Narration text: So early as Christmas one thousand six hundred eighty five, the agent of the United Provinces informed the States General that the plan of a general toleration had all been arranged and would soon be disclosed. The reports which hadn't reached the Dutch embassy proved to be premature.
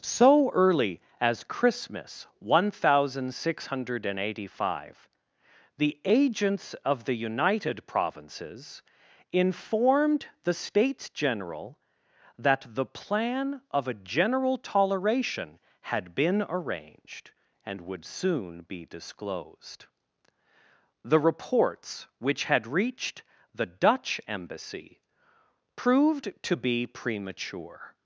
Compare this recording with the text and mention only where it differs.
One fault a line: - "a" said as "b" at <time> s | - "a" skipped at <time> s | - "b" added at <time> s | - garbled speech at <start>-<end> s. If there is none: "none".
- "agent" said as "agents" at 6.0 s
- "all" skipped at 16.1 s
- "hadn't" said as "had" at 22.4 s